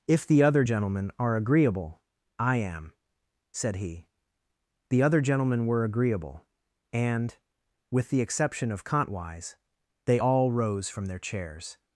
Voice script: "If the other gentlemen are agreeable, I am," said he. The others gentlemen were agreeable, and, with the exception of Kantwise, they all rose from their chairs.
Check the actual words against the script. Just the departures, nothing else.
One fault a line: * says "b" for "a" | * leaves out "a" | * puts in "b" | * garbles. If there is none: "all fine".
* says "other" for "others"